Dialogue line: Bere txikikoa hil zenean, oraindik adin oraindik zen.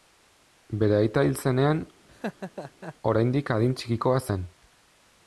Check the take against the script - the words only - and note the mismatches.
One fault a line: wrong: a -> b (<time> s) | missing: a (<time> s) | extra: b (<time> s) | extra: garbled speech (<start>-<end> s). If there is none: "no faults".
wrong: txikikoa -> aita (1.0 s)
wrong: oraindik -> txikikoa (3.8 s)